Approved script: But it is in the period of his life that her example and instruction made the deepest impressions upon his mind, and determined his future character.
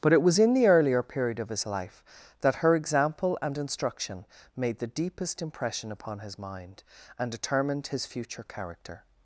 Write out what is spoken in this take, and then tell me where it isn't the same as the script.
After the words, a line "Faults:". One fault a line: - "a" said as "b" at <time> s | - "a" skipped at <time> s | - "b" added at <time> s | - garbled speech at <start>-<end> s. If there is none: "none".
But it was in the earlier period of his life that her example and instruction made the deepest impression upon his mind, and determined his future character.
Faults:
- "is" said as "was" at 0.2 s
- "earlier" added at 0.7 s
- "impressions" said as "impression" at 5.4 s